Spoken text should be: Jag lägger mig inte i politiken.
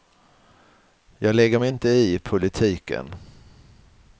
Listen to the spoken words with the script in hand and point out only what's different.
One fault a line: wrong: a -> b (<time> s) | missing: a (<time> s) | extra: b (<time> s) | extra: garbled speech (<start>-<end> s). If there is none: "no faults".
no faults